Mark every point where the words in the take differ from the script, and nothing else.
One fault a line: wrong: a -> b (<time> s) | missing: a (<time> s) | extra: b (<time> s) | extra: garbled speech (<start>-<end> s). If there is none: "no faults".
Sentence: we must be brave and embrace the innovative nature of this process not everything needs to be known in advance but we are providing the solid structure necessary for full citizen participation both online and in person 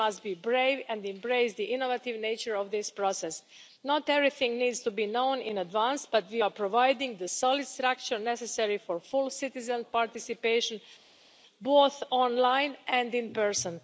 no faults